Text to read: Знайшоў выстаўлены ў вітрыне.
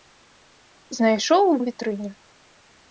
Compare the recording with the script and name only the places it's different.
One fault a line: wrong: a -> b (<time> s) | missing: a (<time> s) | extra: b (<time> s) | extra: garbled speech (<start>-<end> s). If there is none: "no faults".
missing: выстаўлены (1.5 s)